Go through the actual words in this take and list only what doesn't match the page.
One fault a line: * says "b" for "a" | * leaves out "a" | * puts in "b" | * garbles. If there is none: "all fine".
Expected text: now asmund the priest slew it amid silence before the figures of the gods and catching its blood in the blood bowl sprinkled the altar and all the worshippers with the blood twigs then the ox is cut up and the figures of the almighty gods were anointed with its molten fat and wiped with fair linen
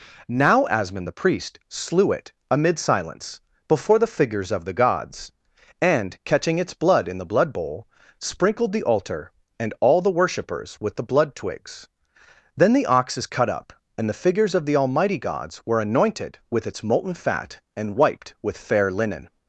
all fine